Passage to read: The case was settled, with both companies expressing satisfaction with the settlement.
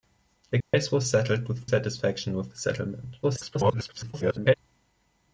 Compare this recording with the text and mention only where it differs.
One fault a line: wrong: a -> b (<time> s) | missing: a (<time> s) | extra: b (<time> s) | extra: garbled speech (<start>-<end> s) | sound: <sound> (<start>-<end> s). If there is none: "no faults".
sound: dropout (0.6-0.7 s)
missing: both companies expressing (1.7 s)
extra: garbled speech (3.2-4.5 s)